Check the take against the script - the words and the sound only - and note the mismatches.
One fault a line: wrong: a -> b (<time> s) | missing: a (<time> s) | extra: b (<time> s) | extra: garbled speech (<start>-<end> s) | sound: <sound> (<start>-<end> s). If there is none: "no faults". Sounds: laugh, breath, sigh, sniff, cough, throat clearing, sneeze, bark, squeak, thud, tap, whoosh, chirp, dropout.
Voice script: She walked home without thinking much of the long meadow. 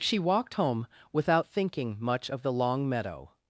no faults